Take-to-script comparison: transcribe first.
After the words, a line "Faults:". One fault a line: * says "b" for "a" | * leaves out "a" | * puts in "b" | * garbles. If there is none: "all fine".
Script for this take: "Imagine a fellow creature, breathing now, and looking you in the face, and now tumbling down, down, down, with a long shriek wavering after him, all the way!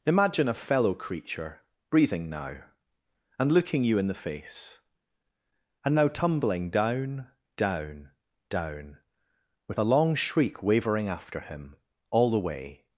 "Imagine a fellow creature, breathing now, and looking you in the face, and now tumbling down, down, down, with a long shriek wavering after him, all the way!
Faults:
all fine